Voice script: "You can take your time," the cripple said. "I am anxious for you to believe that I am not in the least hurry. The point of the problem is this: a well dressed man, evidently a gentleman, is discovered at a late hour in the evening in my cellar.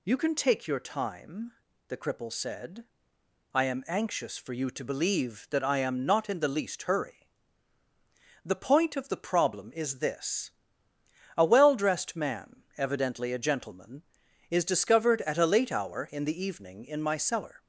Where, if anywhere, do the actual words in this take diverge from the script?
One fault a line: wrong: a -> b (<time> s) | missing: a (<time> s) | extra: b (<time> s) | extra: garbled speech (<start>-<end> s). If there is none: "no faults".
no faults